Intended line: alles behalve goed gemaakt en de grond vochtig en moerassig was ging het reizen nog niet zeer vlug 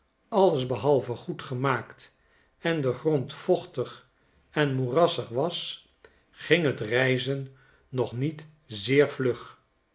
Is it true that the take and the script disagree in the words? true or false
false